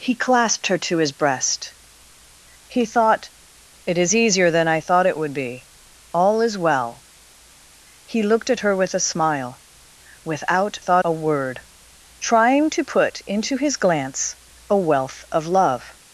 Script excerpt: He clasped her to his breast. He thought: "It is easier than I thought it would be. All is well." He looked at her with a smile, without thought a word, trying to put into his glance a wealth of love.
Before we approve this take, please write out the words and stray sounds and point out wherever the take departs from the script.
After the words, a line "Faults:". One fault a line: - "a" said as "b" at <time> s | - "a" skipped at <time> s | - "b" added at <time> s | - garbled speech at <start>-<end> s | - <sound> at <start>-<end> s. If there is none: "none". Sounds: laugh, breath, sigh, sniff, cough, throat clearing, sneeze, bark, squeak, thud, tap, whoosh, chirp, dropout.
He clasped her to his breast. He thought: "It is easier than I thought it would be. All is well." He looked at her with a smile, without thought a word, trying to put into his glance a wealth of love.
Faults:
none